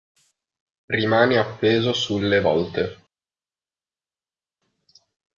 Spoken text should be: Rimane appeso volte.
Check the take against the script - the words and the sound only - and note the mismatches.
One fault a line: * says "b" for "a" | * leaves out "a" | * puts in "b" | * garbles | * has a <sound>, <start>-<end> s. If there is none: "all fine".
* puts in "sulle"